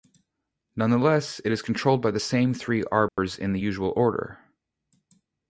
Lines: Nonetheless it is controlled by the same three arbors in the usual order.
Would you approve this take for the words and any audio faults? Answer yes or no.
no